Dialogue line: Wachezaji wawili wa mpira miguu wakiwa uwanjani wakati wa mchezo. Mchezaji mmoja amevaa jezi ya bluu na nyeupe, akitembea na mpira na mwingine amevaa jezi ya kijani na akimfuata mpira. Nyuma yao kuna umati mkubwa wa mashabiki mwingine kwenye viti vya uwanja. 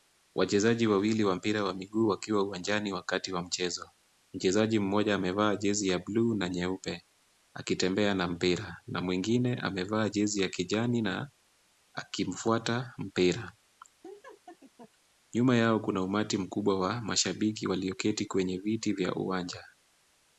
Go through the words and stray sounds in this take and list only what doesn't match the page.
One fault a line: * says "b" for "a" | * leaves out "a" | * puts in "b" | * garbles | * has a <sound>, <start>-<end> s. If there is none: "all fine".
* puts in "wa"
* has a laugh, 14.0-14.9 s
* says "walioketi" for "mwingine"